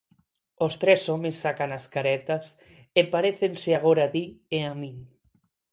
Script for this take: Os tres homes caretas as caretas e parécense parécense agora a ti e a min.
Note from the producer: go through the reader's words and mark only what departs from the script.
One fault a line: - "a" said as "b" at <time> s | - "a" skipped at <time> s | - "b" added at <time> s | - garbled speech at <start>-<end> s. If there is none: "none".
- "caretas" said as "sacan" at 1.4 s
- "parécense" skipped at 3.7 s